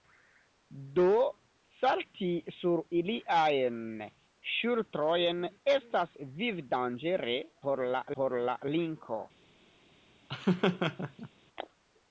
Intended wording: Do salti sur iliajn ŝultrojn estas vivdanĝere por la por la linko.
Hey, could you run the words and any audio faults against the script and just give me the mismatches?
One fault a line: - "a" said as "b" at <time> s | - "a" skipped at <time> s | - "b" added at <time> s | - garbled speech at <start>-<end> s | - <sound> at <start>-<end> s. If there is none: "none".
- laugh at 10.3-11.3 s